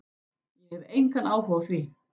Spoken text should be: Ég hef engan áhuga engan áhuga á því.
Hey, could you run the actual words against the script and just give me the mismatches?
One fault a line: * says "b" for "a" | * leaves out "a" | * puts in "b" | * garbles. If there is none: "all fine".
* leaves out "engan áhuga"